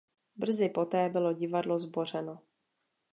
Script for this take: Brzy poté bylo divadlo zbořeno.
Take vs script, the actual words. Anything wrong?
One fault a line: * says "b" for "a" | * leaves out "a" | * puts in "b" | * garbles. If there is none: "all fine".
all fine